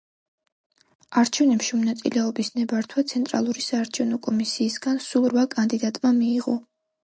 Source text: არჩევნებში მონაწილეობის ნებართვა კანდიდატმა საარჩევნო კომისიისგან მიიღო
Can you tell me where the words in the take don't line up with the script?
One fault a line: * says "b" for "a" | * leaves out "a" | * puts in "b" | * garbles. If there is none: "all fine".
* says "ცენტრალური" for "კანდიდატმა"
* puts in "სულ რვა კანდიდატმა"